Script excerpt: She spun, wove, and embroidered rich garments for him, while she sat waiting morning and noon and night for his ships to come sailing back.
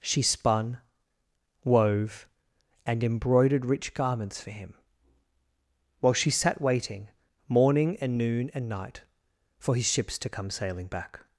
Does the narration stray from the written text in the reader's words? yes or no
no